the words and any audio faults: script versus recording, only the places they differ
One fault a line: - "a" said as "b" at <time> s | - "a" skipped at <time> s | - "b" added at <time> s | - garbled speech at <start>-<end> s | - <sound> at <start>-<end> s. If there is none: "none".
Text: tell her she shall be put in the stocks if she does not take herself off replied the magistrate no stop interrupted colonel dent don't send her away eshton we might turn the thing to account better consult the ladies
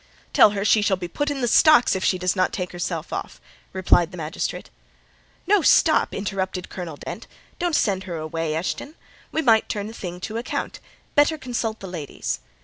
- dropout at 7.0-7.1 s